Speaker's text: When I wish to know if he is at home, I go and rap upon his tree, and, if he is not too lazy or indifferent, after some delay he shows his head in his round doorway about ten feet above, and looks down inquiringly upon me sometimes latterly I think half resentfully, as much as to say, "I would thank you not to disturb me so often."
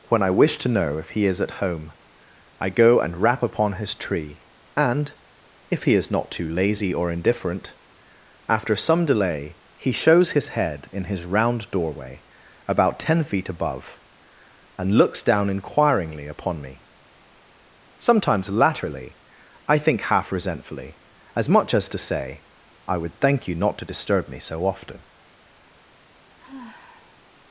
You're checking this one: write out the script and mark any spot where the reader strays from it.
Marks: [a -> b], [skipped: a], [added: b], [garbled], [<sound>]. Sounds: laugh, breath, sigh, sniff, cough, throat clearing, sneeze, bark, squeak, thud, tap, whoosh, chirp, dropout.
When I wish to know if he is at home, I go and rap upon his tree, and, if he is not too lazy or indifferent, after some delay he shows his head in his round doorway about ten feet above, and looks down inquiringly upon me sometimes latterly I think half resentfully, as much as to say, "I would thank you not to disturb me so often." [sigh]